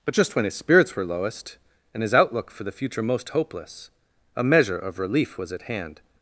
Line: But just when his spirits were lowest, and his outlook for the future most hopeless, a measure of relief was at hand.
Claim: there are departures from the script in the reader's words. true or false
false